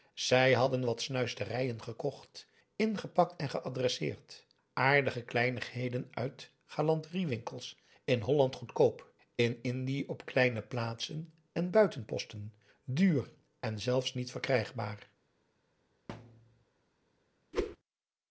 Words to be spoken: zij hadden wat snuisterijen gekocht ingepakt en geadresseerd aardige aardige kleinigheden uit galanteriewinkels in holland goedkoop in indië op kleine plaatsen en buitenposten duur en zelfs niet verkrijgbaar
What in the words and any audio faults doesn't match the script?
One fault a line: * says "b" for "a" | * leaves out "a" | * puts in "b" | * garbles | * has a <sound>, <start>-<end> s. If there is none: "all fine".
* leaves out "aardige"
* has a thud, 16.1-16.6 s
* has a whoosh, 17.5-17.8 s